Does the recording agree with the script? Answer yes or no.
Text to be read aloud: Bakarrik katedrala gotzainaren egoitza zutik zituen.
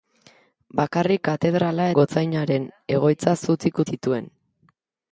yes